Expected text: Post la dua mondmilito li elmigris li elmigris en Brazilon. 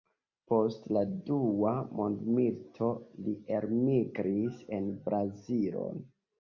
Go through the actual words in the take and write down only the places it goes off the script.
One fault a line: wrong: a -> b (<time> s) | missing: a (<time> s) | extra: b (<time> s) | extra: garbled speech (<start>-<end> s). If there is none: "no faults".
missing: li elmigris (4.7 s)